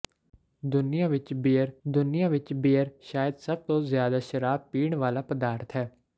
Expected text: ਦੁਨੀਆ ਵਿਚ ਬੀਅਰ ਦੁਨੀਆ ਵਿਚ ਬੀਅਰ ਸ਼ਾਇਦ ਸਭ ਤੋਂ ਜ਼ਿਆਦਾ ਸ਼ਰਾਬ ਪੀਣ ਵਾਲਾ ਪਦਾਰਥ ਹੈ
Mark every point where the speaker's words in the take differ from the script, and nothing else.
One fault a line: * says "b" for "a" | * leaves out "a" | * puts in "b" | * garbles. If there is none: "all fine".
all fine